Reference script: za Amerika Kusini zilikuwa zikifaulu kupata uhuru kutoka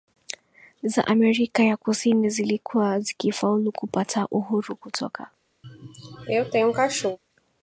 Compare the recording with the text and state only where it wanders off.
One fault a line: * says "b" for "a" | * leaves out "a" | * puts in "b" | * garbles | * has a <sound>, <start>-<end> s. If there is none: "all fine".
* puts in "ya"
* has a sneeze, 5.6-7.2 s